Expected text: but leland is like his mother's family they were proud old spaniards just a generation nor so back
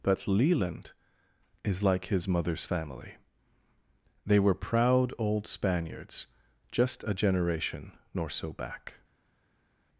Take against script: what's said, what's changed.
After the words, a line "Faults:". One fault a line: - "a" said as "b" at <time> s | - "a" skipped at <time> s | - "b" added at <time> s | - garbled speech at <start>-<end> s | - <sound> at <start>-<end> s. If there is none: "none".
but leland is like his mother's family they were proud old spaniards just a generation nor so back
Faults:
none